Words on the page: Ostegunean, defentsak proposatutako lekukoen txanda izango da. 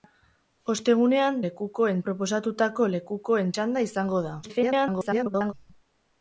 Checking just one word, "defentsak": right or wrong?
wrong